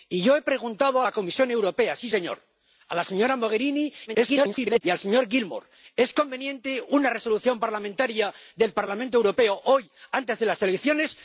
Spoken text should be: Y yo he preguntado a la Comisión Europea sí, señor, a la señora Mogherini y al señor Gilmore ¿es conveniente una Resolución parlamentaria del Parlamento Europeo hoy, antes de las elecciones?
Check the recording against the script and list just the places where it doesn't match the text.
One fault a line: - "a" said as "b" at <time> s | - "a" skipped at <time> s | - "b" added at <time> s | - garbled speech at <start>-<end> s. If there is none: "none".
- garbled speech at 4.1-4.8 s